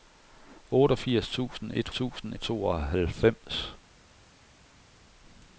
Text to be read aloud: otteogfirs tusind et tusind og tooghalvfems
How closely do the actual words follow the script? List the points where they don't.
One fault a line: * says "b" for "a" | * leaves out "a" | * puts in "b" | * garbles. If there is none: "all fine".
all fine